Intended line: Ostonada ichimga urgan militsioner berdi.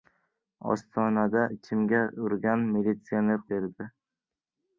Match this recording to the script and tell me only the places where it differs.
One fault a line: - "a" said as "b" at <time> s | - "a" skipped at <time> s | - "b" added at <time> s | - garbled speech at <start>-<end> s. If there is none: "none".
none